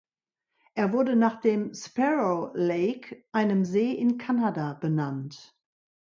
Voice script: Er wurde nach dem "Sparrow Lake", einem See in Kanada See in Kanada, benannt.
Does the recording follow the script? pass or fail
fail